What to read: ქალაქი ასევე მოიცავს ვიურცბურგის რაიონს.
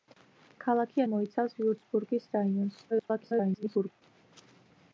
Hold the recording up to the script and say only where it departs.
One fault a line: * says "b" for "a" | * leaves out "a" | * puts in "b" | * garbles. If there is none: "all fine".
* leaves out "ასევე"
* garbles